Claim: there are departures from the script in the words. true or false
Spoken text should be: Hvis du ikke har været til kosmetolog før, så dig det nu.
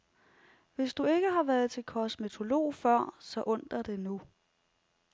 true